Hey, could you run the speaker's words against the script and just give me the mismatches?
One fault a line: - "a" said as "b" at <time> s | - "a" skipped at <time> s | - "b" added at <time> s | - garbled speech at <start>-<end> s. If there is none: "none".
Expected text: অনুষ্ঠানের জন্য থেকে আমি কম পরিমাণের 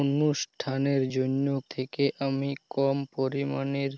none